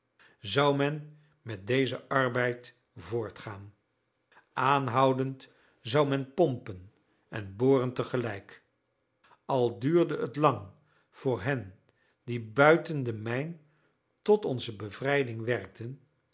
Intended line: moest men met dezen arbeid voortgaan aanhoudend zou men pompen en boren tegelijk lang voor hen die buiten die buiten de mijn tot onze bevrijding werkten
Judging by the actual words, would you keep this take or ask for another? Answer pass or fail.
fail